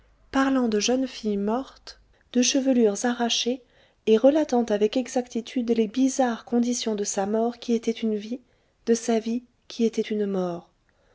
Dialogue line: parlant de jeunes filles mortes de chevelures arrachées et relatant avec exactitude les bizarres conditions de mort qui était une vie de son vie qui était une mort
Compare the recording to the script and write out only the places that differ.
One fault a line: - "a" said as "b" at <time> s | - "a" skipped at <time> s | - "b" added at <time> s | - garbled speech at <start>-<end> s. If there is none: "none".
- "sa" added at 7.0 s
- "son" said as "sa" at 8.9 s